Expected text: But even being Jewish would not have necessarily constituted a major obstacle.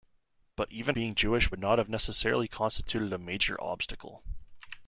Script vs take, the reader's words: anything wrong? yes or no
no